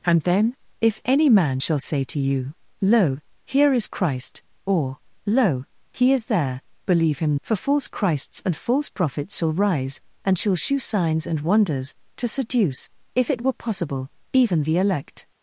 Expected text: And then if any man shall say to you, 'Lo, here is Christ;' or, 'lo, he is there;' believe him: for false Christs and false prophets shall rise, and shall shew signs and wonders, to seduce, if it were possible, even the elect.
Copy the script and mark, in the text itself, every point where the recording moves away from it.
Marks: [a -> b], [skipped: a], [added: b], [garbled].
And then if any man shall say to you, 'Lo, here is Christ;' or, 'lo, he is there;' believe him: for false Christs and false prophets shall rise, and shall shew signs and wonders, to seduce, if it were possible, even the elect.